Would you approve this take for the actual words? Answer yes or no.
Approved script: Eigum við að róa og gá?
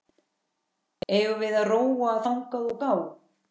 no